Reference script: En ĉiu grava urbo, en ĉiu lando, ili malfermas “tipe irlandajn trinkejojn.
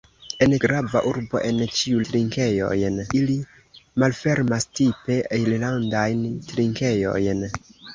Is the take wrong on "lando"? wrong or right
wrong